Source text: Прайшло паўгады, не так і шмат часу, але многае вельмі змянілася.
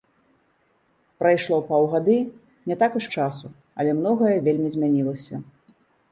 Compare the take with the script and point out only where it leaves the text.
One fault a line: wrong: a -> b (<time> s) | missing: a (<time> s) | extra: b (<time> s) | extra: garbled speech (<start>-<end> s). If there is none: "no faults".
missing: шмат (3.0 s)